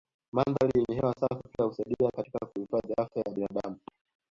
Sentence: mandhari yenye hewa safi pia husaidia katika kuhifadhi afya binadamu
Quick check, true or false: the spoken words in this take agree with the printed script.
false